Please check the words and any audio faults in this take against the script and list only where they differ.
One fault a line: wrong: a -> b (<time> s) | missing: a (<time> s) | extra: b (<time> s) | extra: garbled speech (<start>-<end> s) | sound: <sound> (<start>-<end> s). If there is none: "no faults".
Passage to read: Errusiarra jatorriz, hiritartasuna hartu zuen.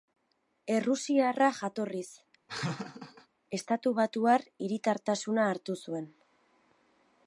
sound: laugh (2.5-3.3 s)
extra: estatubatuar (3.6 s)